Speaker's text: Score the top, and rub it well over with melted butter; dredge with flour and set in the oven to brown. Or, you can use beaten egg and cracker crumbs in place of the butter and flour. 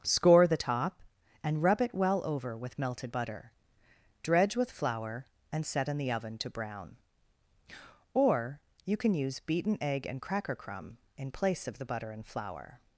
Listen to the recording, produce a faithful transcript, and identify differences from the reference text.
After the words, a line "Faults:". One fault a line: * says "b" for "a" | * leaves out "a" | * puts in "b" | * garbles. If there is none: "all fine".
Score the top, and rub it well over with melted butter; dredge with flour and set in the oven to brown. Or, you can use beaten egg and cracker crumb in place of the butter and flour.
Faults:
* says "crumb" for "crumbs"